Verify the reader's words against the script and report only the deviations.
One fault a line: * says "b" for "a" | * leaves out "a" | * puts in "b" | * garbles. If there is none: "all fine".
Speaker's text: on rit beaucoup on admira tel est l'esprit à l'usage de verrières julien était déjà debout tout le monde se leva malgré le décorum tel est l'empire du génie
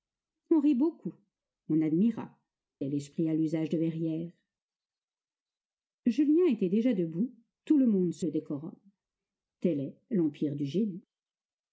* leaves out "tel"
* leaves out "leva malgré"